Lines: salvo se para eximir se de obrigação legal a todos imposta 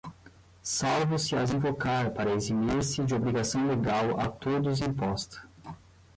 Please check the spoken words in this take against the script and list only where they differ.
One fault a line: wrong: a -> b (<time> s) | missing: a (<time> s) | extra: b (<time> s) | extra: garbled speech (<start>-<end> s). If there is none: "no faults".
extra: as invocar (1.4 s)